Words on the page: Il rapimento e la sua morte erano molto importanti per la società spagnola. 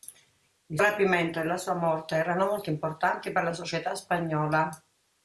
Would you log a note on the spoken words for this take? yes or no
no